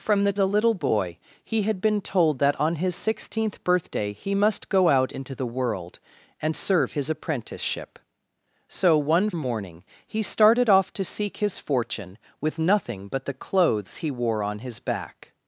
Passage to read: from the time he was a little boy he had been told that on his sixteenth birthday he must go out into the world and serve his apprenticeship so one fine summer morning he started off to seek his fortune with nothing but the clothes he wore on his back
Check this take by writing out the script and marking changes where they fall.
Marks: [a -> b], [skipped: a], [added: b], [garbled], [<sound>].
from the [skipped: time he was] a little boy he had been told that on his sixteenth birthday he must go out into the world and serve his apprenticeship so one [skipped: fine summer] morning he started off to seek his fortune with nothing but the clothes he wore on his back